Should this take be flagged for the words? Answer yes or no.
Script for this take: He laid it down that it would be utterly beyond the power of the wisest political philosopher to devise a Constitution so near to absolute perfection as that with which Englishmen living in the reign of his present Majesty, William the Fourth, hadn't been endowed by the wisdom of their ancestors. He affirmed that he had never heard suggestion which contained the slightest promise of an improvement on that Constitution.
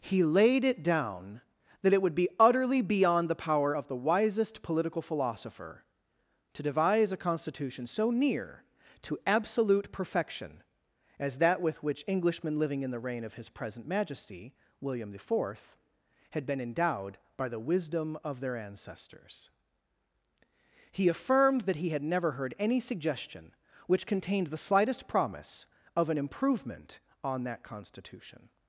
yes